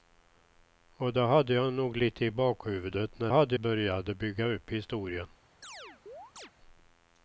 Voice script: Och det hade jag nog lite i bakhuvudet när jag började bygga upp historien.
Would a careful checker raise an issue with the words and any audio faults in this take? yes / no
yes